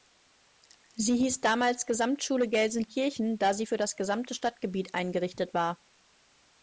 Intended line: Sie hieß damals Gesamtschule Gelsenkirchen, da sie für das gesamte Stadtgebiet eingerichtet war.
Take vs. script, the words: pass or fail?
pass